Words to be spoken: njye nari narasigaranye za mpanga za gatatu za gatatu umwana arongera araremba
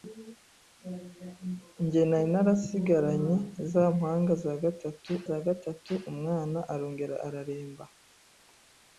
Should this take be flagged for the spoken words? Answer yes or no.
no